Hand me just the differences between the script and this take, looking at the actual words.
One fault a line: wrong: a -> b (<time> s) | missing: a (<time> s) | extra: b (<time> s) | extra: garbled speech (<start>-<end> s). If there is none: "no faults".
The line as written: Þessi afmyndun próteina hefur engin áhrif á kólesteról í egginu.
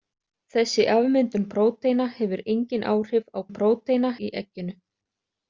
wrong: kólesteról -> próteina (3.6 s)